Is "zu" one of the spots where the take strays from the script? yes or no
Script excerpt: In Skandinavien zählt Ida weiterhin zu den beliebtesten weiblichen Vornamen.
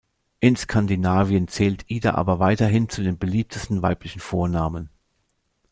no